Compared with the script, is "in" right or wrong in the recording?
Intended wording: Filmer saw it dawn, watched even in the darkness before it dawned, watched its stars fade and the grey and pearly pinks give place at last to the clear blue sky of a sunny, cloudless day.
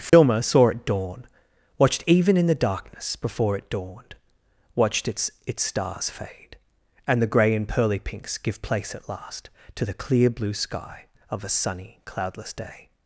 right